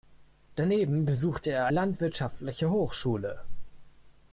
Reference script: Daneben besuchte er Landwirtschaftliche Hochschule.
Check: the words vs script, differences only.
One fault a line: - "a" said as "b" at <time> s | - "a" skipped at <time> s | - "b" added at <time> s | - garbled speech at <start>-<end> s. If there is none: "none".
none